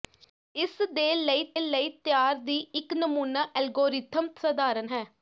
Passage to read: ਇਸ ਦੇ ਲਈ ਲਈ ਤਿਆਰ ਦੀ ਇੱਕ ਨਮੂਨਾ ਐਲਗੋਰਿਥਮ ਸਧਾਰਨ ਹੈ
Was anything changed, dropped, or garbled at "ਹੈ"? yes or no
no